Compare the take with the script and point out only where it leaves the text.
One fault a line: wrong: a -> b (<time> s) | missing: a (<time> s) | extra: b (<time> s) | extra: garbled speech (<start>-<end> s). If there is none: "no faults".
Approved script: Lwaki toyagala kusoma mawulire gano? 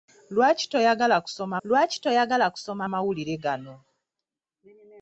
extra: lwaki toyagala kusoma (1.7 s)